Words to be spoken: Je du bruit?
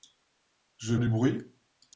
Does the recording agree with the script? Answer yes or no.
yes